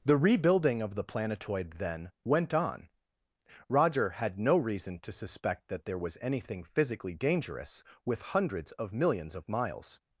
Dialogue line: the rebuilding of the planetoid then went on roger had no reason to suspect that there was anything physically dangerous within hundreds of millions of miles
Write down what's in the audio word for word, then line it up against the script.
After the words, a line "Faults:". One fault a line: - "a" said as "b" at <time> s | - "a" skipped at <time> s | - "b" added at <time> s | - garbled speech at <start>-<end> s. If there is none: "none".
the rebuilding of the planetoid then went on roger had no reason to suspect that there was anything physically dangerous with hundreds of millions of miles
Faults:
- "within" said as "with" at 8.0 s